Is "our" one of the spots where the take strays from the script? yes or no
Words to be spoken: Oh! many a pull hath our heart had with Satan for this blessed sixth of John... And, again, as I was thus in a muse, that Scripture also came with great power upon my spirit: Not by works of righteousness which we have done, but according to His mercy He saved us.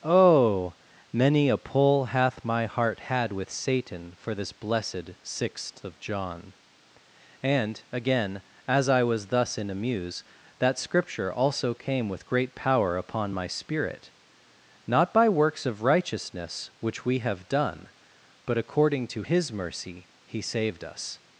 yes